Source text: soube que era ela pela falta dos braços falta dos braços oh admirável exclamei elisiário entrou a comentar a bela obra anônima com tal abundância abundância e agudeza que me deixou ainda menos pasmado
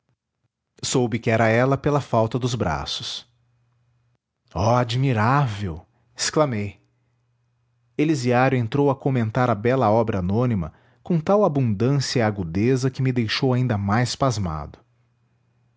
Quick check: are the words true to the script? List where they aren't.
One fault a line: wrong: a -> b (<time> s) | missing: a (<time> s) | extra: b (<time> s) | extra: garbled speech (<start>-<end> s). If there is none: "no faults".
missing: falta dos braços (3.3 s)
missing: abundância (12.2 s)
wrong: menos -> mais (13.8 s)